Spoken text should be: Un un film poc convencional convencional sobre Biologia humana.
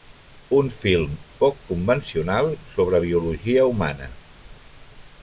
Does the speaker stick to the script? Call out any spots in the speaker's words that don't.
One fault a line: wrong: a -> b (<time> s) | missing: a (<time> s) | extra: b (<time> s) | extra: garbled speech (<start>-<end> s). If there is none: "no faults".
missing: un (0.7 s)
missing: convencional (2.5 s)